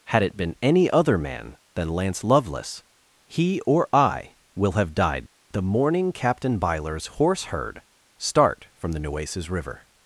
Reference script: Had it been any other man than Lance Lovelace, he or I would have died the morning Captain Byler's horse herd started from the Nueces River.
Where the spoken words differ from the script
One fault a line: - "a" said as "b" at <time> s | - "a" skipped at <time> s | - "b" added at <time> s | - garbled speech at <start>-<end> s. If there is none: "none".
- "would" said as "will" at 4.5 s
- "started" said as "start" at 8.2 s